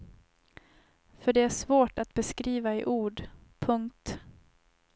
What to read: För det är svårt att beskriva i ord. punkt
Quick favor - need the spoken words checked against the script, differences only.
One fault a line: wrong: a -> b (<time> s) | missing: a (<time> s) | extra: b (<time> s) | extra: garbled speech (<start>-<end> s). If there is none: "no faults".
no faults